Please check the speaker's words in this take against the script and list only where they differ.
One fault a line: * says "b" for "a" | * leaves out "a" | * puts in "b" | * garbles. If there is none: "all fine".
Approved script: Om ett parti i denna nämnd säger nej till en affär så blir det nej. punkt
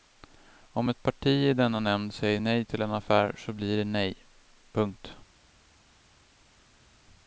all fine